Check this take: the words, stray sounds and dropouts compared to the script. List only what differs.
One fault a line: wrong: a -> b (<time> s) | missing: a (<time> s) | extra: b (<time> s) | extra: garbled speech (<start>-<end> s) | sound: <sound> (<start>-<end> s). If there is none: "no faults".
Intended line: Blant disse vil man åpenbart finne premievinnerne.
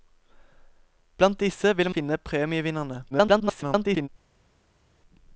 missing: man åpenbart (1.9 s)
extra: garbled speech (3.1-4.1 s)